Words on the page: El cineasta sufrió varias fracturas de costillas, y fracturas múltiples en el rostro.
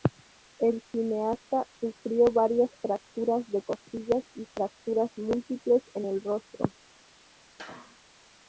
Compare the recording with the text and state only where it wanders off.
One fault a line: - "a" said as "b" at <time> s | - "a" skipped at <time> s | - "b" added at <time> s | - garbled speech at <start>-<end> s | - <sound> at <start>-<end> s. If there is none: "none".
- sneeze at 7.6-8.0 s